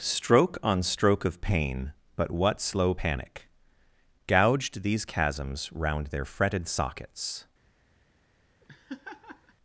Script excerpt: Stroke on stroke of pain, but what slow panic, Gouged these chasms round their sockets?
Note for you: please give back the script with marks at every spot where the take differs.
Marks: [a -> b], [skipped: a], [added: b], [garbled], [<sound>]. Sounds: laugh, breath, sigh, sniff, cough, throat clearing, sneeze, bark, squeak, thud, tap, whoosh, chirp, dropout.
Stroke on stroke of pain, but what slow panic, Gouged these chasms round their [added: fretted] sockets? [laugh]